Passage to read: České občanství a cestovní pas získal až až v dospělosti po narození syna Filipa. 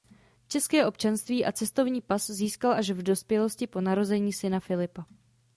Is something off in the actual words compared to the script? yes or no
yes